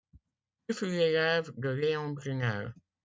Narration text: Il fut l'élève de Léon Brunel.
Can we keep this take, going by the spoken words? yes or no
yes